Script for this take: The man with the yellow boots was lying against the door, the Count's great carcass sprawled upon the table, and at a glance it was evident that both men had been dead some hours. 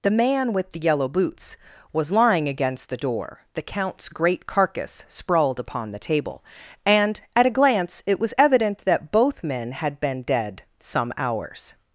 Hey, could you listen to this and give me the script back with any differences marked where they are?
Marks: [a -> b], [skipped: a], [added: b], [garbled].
The man with the yellow boots was lying against the door, the Count's great carcass sprawled upon the table, and at a glance it was evident that both men had been dead some hours.